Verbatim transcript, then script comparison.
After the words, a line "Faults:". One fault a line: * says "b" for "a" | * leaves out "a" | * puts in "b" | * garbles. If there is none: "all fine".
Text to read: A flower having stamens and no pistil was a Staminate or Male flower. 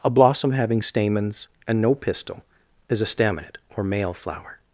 A blossom having stamens and no pistil is a Staminate or Male flower.
Faults:
* says "blossom" for "flower"
* says "is" for "was"